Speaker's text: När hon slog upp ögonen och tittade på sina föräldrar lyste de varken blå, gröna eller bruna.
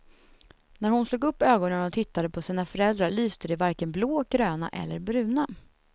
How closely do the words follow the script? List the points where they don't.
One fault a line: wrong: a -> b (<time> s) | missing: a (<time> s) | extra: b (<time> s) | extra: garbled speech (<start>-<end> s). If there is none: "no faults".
no faults